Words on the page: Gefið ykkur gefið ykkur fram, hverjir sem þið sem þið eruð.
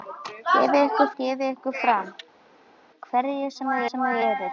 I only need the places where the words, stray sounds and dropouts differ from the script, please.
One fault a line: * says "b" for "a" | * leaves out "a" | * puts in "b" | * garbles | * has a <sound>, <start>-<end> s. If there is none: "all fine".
all fine